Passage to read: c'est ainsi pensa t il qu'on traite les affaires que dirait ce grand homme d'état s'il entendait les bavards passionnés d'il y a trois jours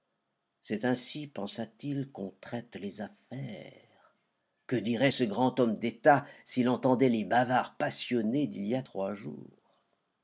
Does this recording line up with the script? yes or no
yes